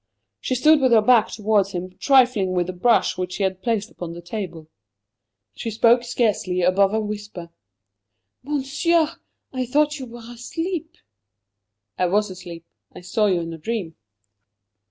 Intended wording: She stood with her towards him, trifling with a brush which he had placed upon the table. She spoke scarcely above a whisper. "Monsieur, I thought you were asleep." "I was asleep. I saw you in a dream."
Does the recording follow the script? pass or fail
fail